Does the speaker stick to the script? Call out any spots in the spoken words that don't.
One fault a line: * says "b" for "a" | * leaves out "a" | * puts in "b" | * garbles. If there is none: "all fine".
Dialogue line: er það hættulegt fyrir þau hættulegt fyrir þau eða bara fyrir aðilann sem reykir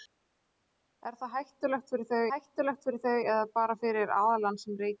all fine